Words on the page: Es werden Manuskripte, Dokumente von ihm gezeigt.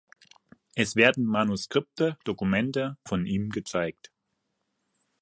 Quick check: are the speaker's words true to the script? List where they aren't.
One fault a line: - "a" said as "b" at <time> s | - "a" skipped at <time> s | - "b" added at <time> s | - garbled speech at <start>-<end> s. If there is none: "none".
none